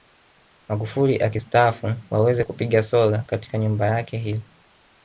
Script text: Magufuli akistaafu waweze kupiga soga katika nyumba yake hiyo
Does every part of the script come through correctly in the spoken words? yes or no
yes